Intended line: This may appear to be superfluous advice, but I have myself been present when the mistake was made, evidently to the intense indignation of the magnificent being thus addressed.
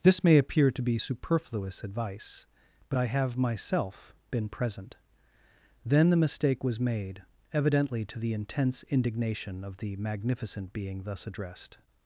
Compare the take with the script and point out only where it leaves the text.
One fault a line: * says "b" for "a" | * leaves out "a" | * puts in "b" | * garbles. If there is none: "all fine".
* says "then" for "when"